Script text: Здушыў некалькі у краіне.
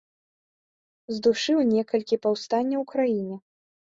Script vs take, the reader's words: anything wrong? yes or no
yes